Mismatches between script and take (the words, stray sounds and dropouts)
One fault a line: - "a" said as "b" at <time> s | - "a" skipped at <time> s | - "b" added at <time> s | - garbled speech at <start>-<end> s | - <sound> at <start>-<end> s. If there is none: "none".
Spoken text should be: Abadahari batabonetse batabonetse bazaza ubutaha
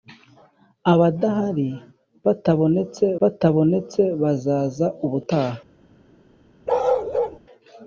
- bark at 6.7-7.4 s